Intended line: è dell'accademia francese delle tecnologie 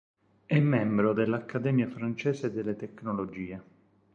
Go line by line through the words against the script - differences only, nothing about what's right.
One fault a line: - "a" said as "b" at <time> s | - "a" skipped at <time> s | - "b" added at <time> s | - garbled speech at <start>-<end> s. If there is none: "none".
- "membro" added at 0.6 s